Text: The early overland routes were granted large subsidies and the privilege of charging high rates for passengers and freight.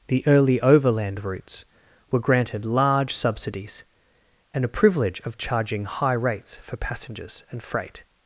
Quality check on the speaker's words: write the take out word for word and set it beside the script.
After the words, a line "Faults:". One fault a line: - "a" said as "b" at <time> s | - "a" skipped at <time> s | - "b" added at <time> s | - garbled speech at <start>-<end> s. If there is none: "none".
The early overland routes were granted large subsidies and a privilege of charging high rates for passengers and freight.
Faults:
- "the" said as "a" at 4.7 s